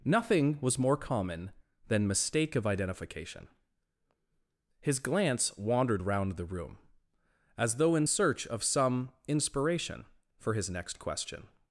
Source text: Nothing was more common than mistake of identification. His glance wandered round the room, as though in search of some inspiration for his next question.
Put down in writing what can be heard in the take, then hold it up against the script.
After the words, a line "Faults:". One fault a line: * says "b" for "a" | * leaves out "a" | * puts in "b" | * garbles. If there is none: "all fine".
Nothing was more common than mistake of identification. His glance wandered round the room, as though in search of some inspiration for his next question.
Faults:
all fine